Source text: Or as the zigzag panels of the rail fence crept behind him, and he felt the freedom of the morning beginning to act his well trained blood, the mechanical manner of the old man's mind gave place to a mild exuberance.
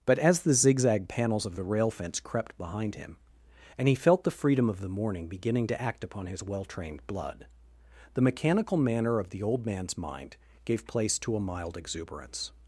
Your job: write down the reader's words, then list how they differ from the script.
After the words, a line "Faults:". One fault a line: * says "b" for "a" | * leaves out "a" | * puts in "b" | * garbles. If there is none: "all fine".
But as the zigzag panels of the rail fence crept behind him, and he felt the freedom of the morning beginning to act upon his well trained blood, the mechanical manner of the old man's mind gave place to a mild exuberance.
Faults:
* says "But" for "Or"
* puts in "upon"